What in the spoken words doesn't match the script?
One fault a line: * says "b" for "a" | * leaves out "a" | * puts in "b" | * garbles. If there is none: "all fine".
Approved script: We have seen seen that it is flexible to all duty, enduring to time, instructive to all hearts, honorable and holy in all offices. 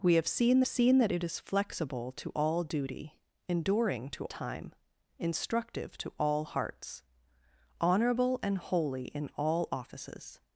all fine